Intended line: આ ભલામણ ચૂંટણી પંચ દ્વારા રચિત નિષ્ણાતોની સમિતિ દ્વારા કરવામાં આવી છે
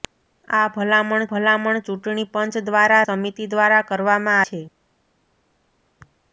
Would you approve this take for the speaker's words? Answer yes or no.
no